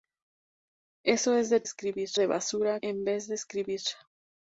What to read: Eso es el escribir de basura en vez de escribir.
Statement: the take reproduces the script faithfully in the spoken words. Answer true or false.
true